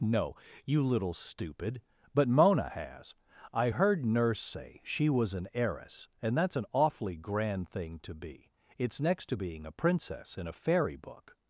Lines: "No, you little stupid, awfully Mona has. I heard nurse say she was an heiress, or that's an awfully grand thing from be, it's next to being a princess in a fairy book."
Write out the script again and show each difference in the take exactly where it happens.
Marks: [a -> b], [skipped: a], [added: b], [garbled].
"No, you little stupid, [awfully -> but] Mona has. I heard nurse say she was an heiress, [or -> and] that's an awfully grand thing [from -> to] be, it's next to being a princess in a fairy book."